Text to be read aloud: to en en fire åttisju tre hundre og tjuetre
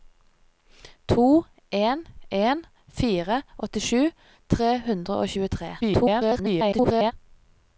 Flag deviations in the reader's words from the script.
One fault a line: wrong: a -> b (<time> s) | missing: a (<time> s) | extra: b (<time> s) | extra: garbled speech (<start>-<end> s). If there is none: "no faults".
extra: garbled speech (5.8-7.1 s)